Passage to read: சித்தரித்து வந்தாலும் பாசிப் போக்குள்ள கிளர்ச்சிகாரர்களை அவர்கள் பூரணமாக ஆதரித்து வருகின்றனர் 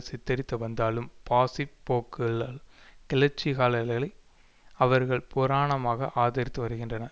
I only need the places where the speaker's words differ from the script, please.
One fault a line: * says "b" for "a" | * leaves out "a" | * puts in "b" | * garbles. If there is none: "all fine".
all fine